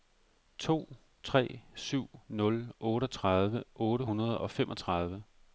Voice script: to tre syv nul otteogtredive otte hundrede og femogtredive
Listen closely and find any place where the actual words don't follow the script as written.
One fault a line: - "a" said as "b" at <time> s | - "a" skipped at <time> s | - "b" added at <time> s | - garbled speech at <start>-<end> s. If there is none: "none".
none